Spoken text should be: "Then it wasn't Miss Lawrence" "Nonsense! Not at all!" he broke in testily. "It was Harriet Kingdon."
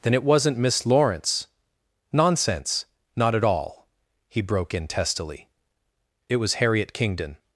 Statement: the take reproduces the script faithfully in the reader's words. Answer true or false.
true